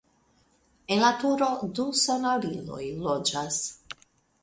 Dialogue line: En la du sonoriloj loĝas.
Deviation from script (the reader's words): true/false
true